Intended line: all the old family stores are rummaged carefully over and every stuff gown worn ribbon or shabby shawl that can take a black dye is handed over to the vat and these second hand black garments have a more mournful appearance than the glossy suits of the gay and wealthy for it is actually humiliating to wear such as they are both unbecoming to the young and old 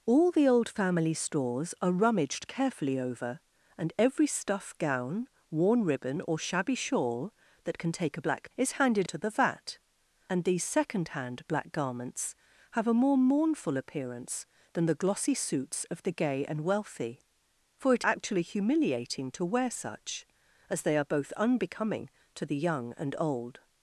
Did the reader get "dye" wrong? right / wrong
wrong